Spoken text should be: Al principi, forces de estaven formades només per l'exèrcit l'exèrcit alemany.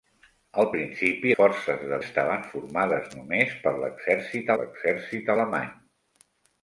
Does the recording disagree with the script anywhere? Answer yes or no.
no